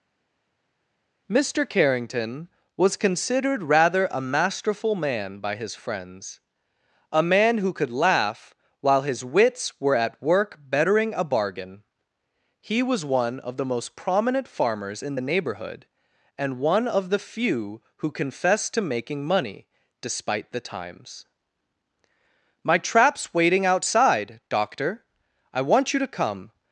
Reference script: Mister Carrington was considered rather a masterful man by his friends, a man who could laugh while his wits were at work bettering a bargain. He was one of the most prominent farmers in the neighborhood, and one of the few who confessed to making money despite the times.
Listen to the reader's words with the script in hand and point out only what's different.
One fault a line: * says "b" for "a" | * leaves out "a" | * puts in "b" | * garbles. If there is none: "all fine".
* puts in "My trap's waiting outside doctor I want you to come"